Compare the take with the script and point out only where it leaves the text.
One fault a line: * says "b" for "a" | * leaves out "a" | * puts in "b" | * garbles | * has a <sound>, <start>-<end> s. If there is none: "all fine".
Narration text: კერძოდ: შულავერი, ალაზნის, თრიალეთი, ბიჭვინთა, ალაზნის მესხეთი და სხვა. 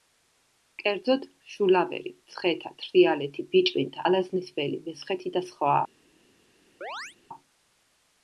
* says "მცხეთა" for "ალაზნის"
* puts in "ველი"
* has a chirp, 6.8-7.2 s